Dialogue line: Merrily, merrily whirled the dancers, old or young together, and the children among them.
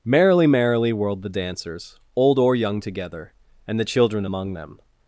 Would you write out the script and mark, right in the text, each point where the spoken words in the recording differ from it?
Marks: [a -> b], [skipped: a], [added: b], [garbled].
Merrily, merrily whirled the dancers, old or young together, and the children among them.